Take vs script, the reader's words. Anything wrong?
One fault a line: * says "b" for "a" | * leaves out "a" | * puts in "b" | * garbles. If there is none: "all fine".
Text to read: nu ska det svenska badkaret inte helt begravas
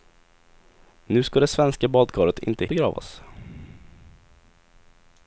* leaves out "helt"